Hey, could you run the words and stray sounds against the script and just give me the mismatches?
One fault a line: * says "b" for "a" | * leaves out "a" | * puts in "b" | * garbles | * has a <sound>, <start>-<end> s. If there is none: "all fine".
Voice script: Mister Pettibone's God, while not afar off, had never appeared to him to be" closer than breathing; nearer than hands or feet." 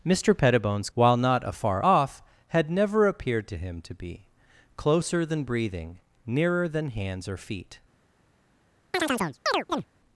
* leaves out "God"
* has a chirp, 8.9-9.9 s